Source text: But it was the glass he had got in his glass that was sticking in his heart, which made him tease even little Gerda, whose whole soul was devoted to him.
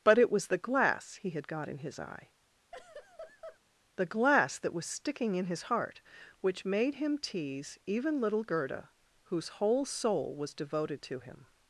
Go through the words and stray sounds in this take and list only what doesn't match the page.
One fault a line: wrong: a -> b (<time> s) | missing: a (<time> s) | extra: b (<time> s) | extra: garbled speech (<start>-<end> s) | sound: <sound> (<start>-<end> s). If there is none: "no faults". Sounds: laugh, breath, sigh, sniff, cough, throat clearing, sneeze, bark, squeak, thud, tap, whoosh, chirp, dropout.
extra: eye the (2.0 s)
sound: laugh (2.7-3.6 s)